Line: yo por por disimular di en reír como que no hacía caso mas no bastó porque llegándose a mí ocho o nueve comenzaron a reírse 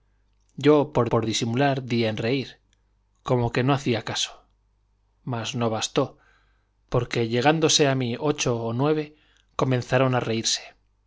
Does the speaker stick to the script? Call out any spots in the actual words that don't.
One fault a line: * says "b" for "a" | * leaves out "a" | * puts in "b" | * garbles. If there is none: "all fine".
all fine